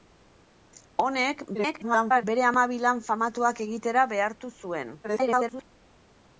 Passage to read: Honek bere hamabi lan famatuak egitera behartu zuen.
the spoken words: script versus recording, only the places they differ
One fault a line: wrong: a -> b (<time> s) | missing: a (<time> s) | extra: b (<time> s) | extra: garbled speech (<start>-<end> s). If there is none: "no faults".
extra: garbled speech (1.5-2.2 s)
extra: garbled speech (5.0-5.6 s)